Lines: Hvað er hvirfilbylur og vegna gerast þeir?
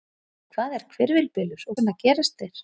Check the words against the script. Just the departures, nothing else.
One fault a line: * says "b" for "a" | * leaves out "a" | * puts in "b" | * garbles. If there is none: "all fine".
all fine